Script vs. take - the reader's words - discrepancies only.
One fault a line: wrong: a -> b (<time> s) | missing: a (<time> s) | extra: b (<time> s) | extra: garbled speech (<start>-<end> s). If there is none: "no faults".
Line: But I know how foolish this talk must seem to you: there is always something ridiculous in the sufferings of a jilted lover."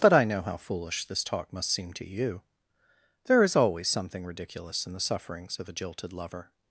no faults